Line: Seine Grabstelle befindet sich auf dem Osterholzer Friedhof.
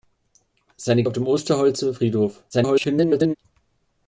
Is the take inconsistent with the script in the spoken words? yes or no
yes